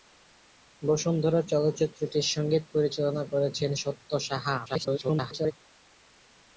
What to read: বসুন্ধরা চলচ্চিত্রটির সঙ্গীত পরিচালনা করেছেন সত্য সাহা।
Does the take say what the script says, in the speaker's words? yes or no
no